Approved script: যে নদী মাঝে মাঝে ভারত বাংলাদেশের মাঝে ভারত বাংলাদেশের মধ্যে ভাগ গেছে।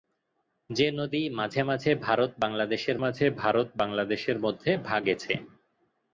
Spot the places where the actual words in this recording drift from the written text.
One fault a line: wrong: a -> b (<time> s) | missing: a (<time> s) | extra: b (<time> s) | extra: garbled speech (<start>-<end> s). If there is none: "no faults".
no faults